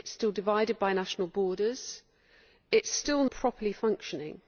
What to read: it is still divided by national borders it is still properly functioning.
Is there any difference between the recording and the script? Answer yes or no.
no